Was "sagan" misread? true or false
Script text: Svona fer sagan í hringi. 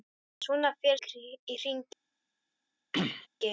true